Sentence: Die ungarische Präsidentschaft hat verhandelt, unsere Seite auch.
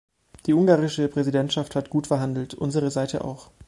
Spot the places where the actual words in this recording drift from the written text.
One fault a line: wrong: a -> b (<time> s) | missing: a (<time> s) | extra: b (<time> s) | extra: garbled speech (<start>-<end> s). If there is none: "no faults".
extra: gut (1.9 s)